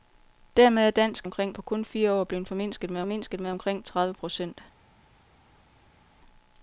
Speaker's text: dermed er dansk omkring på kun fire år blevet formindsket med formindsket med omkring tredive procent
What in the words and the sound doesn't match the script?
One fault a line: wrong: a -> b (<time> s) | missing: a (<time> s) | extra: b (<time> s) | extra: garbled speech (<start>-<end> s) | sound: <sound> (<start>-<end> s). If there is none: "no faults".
no faults